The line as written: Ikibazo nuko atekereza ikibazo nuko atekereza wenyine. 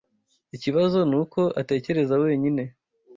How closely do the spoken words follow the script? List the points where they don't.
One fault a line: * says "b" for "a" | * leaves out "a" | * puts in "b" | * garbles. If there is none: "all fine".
* leaves out "ikibazo nuko atekereza"